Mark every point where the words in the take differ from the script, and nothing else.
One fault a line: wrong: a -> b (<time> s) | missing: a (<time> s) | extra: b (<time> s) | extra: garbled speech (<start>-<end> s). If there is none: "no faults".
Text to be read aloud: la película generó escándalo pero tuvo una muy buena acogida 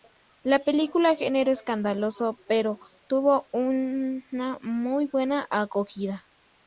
no faults